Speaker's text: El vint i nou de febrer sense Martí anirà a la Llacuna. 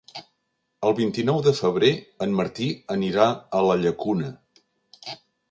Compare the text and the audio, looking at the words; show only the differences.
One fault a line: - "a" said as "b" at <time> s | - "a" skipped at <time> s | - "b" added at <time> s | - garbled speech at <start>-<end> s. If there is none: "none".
- "sense" said as "en" at 2.3 s